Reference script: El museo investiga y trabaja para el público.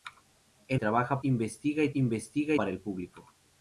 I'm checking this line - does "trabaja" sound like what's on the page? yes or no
no